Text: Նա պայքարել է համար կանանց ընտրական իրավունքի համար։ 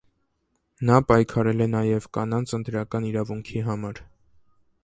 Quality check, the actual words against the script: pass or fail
fail